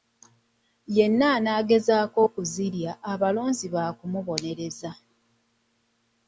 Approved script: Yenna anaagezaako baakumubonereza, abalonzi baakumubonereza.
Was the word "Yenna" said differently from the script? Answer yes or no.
no